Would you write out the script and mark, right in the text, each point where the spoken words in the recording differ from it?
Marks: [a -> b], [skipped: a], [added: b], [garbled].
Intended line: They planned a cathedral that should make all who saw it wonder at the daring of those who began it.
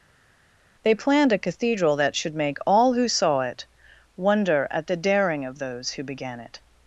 They planned a cathedral that should make all who saw it wonder at the daring of those who began it.